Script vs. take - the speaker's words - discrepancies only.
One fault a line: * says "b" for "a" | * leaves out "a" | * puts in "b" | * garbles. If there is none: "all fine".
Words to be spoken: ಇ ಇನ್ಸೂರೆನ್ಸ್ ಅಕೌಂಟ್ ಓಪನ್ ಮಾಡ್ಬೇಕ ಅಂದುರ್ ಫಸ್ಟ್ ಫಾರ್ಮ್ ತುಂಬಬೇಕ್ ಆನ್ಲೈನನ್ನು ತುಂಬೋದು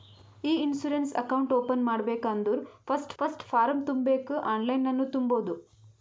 * puts in "ಫಸ್ಟ್"